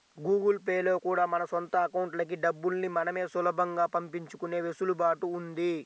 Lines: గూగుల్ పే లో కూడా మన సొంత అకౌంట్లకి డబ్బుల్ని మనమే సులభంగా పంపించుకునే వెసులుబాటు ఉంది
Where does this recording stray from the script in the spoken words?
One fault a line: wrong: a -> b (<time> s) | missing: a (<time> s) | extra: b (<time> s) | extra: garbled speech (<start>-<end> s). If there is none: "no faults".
no faults